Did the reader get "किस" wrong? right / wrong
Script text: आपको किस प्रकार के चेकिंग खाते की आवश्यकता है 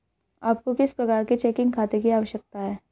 right